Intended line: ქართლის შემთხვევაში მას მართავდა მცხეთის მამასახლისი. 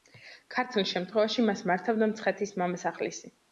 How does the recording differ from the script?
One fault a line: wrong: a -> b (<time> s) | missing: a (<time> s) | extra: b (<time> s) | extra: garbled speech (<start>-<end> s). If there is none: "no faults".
no faults